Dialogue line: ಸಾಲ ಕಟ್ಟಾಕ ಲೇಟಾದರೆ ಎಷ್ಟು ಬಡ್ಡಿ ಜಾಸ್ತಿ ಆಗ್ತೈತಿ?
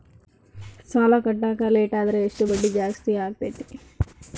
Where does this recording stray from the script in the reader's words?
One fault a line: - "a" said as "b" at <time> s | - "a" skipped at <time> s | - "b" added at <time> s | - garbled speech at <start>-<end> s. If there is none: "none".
none